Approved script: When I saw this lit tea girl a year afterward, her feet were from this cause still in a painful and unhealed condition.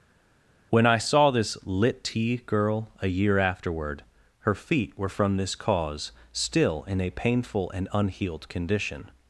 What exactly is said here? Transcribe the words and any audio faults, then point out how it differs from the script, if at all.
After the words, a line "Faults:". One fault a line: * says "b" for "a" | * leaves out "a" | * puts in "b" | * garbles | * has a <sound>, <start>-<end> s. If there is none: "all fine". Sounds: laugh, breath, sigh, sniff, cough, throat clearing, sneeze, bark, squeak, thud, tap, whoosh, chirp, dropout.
When I saw this lit tea girl a year afterward, her feet were from this cause still in a painful and unhealed condition.
Faults:
all fine